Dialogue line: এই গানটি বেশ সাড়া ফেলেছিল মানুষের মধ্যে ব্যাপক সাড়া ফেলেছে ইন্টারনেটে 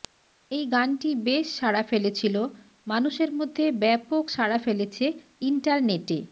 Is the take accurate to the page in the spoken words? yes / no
yes